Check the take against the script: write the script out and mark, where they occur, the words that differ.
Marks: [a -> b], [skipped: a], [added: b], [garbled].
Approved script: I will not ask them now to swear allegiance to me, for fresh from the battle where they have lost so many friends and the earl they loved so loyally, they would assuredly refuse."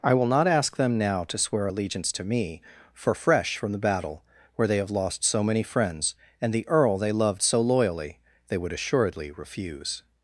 I will not ask them now to swear allegiance to me, for fresh from the battle where they have lost so many friends and the earl they loved so loyally, they would assuredly refuse."